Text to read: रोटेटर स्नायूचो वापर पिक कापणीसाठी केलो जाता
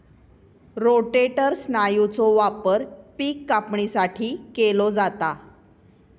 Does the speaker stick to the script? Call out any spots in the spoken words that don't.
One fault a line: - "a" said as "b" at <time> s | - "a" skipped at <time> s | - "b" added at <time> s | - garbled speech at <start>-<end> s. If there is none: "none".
none